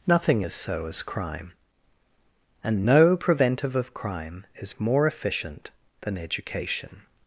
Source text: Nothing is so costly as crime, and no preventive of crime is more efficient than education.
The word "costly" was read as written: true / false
false